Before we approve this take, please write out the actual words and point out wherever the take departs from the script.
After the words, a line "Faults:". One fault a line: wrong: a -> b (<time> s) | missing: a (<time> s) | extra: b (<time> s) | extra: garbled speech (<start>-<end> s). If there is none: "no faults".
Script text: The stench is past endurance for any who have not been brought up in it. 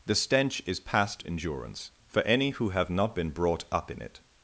The stench is past endurance for any who have not been brought up in it.
Faults:
no faults